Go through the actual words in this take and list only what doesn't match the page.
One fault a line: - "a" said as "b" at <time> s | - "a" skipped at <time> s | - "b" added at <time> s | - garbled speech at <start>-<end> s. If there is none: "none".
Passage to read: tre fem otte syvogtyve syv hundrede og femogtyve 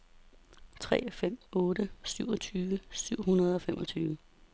none